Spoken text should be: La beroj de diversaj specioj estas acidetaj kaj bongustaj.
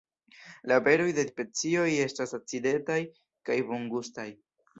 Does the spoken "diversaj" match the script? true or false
false